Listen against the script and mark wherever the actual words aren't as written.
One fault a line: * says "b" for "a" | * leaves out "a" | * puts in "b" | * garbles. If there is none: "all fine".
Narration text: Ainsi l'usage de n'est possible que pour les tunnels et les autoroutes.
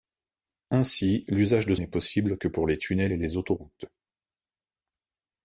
all fine